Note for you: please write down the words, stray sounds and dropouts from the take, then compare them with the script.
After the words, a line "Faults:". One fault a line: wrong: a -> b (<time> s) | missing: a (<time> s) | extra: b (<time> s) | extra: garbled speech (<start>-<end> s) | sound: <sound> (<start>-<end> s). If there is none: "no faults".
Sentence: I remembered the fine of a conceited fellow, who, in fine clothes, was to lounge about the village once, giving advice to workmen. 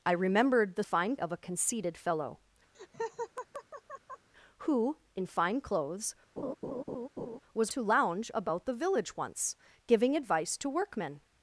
I remembered the fine of a conceited fellow, who, in fine clothes, was to lounge about the village once, giving advice to workmen.
Faults:
sound: laugh (2.7-4.3 s)
sound: laugh (6.4-7.4 s)